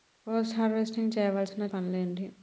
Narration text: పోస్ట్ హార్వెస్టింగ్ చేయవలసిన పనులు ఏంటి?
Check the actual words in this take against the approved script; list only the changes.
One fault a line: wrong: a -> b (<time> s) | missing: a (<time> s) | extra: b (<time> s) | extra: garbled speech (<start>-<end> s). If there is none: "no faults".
no faults